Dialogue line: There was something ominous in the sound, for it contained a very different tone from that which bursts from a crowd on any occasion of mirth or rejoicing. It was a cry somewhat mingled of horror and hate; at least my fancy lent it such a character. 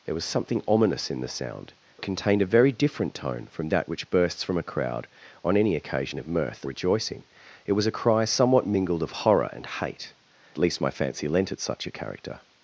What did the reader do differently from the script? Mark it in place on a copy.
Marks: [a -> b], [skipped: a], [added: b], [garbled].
There was something ominous in the sound, [skipped: for] it contained a very different tone from that which bursts from a crowd on any occasion of mirth [skipped: or] rejoicing. It was a cry somewhat mingled of horror and hate; [skipped: at] least my fancy lent it such a character.